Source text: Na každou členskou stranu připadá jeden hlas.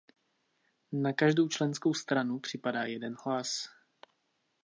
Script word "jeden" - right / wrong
right